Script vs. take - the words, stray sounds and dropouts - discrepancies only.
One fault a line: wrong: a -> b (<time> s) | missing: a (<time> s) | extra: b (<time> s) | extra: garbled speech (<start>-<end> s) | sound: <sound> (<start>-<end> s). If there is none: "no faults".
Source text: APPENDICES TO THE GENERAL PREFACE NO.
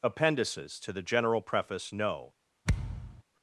sound: thud (2.6-3.2 s)